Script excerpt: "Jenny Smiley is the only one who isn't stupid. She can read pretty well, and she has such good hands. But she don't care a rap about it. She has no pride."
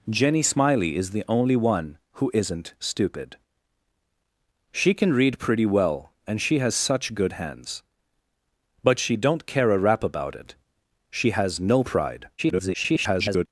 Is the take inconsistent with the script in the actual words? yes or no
yes